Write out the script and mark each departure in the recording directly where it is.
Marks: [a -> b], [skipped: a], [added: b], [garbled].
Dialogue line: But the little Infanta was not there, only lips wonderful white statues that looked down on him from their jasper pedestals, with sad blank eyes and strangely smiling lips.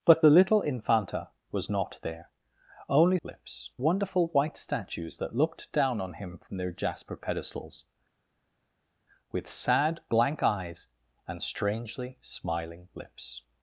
But the little Infanta was not there, only lips wonderful white statues that looked down on him from their jasper pedestals, with sad blank eyes and strangely smiling lips.